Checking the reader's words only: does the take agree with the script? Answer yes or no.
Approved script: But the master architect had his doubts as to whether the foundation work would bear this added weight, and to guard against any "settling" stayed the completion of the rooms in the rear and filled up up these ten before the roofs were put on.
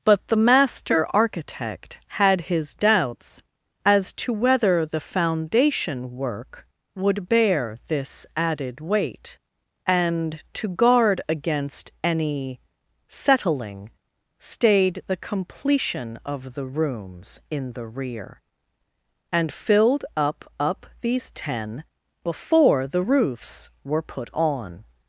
yes